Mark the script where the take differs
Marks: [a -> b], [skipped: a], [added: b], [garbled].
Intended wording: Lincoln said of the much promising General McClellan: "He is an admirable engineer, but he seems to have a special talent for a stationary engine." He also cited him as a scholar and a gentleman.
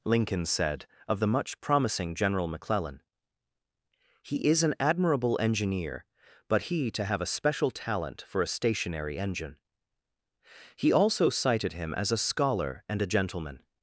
Lincoln said of the much promising General McClellan: "He is an admirable engineer, but he [skipped: seems] to have a special talent for a stationary engine." He also cited him as a scholar and a gentleman.